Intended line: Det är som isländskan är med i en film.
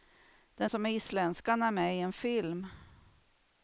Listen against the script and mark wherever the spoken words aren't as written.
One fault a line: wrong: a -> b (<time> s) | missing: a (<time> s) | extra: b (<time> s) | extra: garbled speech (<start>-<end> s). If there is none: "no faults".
no faults